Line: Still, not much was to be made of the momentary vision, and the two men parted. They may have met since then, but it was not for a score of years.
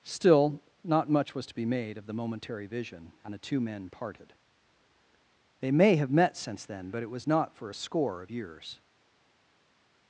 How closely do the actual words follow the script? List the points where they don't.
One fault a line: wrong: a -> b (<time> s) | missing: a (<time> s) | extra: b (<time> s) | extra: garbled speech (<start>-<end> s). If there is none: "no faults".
no faults